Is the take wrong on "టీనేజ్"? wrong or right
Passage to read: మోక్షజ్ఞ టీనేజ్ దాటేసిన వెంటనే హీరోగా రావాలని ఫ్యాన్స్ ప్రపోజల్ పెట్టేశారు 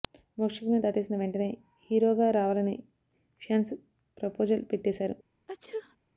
wrong